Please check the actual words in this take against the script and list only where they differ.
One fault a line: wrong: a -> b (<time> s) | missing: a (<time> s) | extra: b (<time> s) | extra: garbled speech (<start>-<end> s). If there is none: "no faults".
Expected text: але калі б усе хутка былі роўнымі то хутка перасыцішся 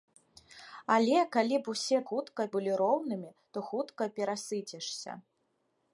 no faults